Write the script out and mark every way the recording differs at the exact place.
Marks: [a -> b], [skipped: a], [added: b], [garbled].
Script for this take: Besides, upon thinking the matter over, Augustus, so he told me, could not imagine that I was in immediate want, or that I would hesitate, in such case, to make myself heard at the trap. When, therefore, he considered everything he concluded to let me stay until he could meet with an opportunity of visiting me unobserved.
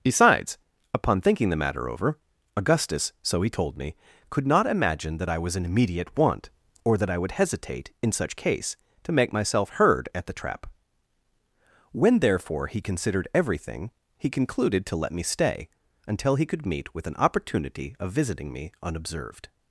Besides, upon thinking the matter over, Augustus, so he told me, could not imagine that I was in immediate want, or that I would hesitate, in such case, to make myself heard at the trap. When, therefore, he considered everything he concluded to let me stay until he could meet with an opportunity of visiting me unobserved.